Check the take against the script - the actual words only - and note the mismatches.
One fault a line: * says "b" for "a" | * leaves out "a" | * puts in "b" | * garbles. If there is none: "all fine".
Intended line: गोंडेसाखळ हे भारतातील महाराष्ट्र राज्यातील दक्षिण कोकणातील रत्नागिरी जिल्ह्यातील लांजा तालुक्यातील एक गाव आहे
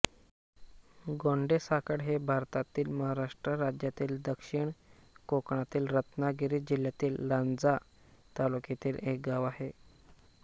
all fine